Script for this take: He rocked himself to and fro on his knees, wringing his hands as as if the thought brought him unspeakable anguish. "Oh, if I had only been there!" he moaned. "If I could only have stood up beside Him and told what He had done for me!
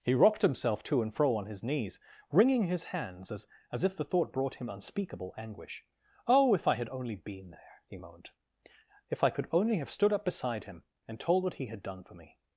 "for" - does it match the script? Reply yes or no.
yes